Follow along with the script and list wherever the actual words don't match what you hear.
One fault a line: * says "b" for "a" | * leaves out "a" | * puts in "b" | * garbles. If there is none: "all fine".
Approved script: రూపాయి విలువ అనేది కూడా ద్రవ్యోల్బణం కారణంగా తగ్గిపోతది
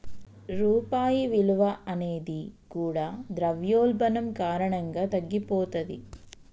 all fine